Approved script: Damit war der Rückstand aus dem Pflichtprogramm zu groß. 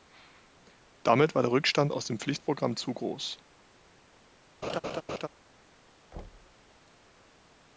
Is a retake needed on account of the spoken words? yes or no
no